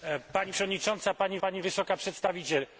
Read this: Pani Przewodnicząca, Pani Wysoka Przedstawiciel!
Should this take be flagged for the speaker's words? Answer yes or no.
yes